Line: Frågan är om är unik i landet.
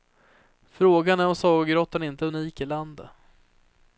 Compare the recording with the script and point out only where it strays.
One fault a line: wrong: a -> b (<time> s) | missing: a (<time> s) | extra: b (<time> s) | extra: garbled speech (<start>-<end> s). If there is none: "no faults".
extra: sagogrottan inte (1.4 s)